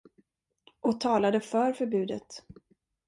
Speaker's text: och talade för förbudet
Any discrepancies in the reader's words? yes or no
no